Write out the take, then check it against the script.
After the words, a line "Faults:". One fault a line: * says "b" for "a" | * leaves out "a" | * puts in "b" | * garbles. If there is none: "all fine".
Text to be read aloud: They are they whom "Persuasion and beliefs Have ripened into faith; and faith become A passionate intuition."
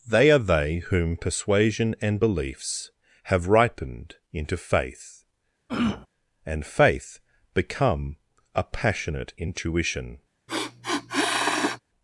They are they whom "Persuasion and beliefs Have ripened into faith; and faith become A passionate intuition."
Faults:
all fine